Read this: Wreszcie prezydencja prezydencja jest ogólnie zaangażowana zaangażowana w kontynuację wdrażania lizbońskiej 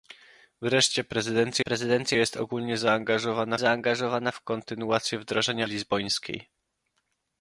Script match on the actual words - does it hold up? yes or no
yes